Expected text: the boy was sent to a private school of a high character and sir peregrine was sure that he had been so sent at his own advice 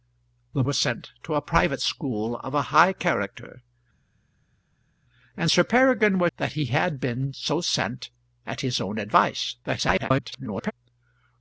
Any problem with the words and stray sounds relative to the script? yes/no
yes